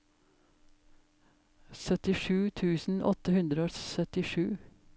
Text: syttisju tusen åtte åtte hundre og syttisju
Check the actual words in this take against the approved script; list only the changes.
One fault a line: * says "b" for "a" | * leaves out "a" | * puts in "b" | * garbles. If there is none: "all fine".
* leaves out "åtte"